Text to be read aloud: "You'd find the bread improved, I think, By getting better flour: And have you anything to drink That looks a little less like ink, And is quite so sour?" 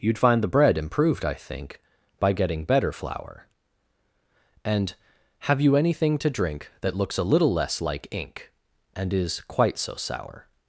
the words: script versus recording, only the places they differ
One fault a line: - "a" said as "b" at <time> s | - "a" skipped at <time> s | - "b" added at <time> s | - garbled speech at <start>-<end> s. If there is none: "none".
none